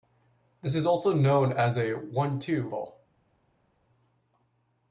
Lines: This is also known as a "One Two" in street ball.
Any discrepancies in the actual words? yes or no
yes